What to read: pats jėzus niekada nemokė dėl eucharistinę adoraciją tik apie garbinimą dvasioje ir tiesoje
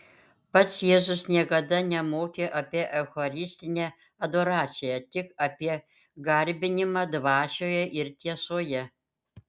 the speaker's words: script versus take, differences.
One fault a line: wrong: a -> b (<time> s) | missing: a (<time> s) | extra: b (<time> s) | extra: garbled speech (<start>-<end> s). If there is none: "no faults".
wrong: dėl -> apie (2.6 s)